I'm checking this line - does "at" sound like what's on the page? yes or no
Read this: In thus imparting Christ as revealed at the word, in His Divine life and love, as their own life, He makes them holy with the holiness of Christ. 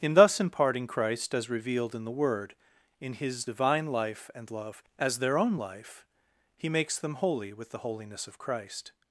no